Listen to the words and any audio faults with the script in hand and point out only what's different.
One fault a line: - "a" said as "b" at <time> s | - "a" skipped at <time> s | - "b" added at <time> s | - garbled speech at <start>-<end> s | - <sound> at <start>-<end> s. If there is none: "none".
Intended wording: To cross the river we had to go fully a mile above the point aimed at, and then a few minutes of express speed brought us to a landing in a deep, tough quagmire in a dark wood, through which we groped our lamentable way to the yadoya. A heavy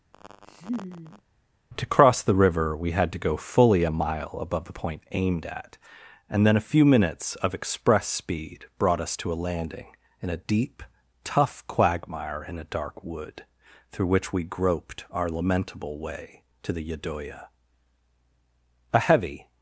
- laugh at 0.1-1.2 s